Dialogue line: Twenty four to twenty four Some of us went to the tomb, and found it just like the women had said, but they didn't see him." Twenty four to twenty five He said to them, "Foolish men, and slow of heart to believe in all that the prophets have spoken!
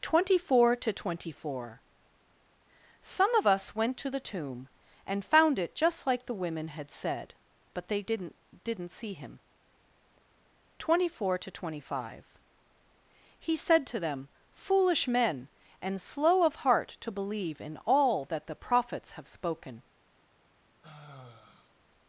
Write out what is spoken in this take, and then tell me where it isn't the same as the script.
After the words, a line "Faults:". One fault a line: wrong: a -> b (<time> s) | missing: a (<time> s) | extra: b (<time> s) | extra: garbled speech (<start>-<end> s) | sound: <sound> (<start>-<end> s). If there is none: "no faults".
Twenty four to twenty four Some of us went to the tomb, and found it just like the women had said, but they didn't didn't see him." Twenty four to twenty five He said to them, "Foolish men, and slow of heart to believe in all that the prophets have spoken!
Faults:
extra: didn't (8.6 s)
sound: sigh (20.8-21.7 s)